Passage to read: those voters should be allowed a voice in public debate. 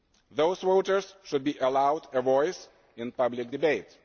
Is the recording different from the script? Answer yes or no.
no